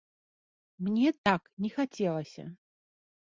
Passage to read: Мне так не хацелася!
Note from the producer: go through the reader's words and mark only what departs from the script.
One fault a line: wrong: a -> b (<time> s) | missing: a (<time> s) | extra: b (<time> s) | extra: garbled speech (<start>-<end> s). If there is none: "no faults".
no faults